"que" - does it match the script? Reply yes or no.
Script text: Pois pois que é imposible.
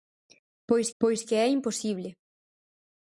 yes